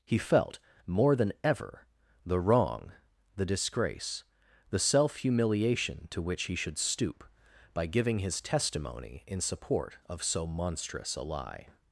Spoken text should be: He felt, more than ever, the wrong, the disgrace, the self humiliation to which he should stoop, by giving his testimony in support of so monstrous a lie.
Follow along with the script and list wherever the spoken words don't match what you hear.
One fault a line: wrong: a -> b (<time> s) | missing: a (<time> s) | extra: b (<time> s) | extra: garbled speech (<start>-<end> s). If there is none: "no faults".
no faults